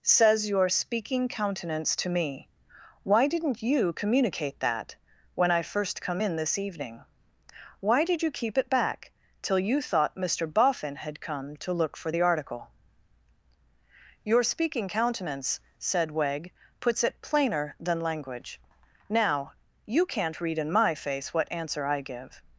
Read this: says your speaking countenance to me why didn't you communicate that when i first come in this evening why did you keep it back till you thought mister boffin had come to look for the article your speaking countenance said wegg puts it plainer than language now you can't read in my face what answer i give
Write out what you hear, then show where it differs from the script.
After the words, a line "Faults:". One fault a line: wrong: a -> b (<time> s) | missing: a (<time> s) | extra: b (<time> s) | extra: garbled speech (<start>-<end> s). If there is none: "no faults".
says your speaking countenance to me why didn't you communicate that when i first come in this evening why did you keep it back till you thought mister boffin had come to look for the article your speaking countenance said wegg puts it plainer than language now you can't read in my face what answer i give
Faults:
no faults